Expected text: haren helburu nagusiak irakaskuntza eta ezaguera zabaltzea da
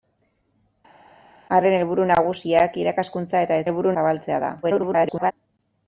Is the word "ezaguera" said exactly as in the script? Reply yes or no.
no